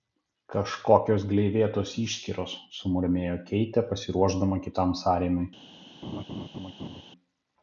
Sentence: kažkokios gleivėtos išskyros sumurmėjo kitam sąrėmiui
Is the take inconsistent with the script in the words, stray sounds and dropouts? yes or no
yes